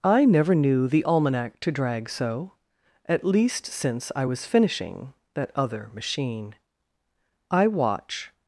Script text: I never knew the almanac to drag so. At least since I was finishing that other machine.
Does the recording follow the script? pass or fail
fail